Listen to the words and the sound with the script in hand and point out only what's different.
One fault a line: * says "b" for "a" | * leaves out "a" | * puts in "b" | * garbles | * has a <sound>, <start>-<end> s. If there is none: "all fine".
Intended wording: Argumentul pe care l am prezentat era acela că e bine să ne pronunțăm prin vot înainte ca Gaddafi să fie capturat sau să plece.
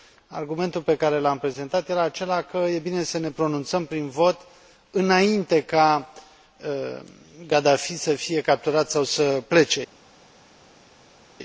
all fine